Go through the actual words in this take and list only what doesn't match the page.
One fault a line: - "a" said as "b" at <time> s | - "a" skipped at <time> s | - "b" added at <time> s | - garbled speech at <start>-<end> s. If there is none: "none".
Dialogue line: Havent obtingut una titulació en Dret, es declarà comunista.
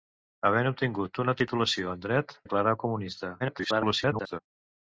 - "es" skipped at 2.4 s
- garbled speech at 3.4-4.4 s